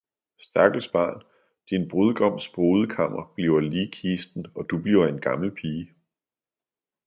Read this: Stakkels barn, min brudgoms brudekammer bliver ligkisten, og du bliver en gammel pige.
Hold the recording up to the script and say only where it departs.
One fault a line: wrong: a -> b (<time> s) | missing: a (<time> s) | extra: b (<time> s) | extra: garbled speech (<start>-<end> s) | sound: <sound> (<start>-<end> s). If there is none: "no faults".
wrong: min -> din (1.7 s)